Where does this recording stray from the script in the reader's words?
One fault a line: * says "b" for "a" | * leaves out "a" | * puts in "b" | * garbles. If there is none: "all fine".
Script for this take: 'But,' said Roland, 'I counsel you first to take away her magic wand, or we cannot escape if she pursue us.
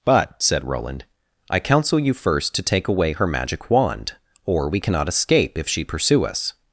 all fine